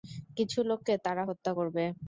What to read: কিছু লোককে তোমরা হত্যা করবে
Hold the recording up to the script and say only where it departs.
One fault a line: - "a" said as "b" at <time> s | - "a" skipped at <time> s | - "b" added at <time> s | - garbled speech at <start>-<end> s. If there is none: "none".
- "তোমরা" said as "তারা" at 1.1 s